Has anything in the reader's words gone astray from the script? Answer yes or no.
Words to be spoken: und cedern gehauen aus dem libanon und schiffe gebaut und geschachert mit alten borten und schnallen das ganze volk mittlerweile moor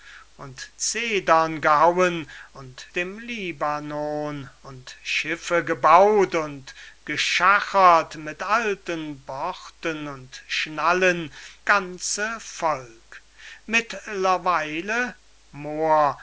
yes